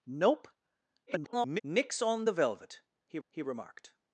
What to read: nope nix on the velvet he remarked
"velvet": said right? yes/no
yes